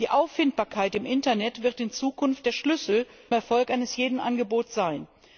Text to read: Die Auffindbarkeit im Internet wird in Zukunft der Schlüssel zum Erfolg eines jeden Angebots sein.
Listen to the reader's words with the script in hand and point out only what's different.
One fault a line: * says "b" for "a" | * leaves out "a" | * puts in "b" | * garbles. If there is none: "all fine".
* leaves out "zum"